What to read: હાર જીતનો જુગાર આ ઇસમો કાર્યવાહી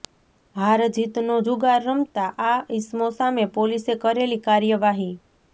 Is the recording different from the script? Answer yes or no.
yes